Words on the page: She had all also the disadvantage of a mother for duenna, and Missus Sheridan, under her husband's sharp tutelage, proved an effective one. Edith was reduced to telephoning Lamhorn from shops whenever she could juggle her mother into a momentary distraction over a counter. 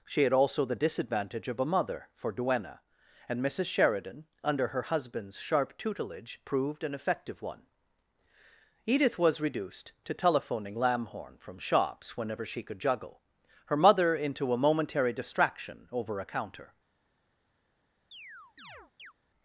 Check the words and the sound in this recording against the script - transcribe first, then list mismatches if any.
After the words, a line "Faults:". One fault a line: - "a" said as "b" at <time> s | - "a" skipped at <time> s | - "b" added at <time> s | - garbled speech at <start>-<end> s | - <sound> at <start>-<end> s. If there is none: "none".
She had also the disadvantage of a mother for duenna, and Missus Sheridan, under her husband's sharp tutelage, proved an effective one. Edith was reduced to telephoning Lamhorn from shops whenever she could juggle her mother into a momentary distraction over a counter.
Faults:
- "all" skipped at 0.3 s
- chirp at 18.1-19.1 s